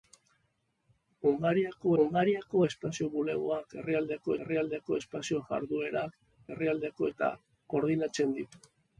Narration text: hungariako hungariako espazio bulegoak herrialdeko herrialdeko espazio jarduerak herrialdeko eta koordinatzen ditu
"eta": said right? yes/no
yes